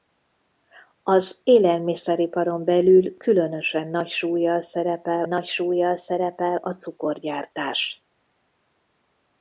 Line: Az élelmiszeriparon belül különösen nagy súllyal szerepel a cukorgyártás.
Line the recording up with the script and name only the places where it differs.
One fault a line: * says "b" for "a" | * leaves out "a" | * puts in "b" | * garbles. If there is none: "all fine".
* puts in "nagy súllyal szerepel"